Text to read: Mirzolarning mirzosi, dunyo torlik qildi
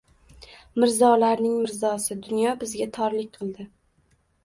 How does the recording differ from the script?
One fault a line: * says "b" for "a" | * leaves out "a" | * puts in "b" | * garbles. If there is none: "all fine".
* puts in "bizga"